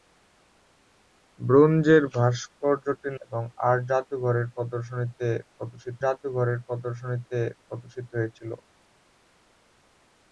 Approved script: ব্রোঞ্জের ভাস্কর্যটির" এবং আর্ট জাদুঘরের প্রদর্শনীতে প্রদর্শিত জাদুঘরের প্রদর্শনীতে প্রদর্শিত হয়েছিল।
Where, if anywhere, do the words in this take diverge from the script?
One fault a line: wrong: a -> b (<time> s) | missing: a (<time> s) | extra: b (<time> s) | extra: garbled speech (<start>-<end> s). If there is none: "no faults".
no faults